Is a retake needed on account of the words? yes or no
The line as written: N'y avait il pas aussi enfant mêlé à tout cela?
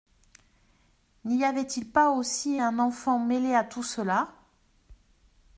yes